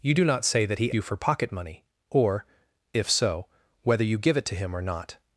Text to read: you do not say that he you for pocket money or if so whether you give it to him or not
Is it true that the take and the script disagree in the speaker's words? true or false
false